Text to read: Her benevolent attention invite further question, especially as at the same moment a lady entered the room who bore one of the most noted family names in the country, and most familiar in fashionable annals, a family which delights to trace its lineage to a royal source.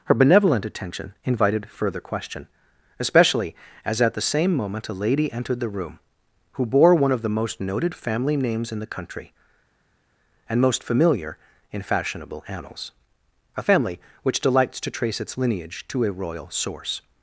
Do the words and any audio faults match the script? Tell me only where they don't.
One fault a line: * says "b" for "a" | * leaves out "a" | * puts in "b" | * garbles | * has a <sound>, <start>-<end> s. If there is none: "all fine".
* says "invited" for "invite"